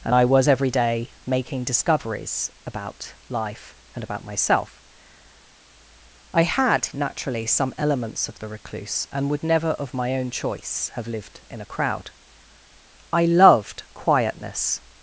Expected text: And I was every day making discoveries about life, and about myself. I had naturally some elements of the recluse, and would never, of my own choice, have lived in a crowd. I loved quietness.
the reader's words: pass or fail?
pass